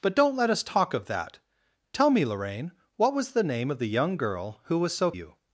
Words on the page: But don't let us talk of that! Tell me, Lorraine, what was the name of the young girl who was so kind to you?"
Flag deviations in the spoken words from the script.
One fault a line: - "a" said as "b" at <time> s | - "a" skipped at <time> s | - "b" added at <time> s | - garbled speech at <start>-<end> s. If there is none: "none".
- "kind to" skipped at 5.1 s